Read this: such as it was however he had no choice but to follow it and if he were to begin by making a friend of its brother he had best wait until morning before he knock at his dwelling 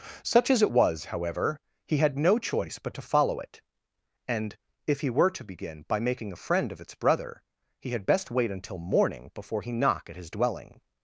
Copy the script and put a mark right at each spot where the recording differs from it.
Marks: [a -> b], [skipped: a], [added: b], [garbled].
such as it was however he had no choice but to follow it and if he were to begin by making a friend of its brother he had best wait until morning before he knock at his dwelling